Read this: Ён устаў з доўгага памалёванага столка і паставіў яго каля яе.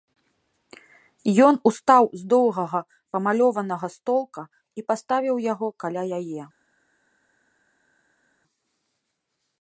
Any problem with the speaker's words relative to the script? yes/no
no